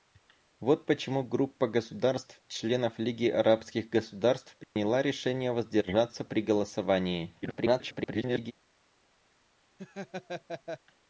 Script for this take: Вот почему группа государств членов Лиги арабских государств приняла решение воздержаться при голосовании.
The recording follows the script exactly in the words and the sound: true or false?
false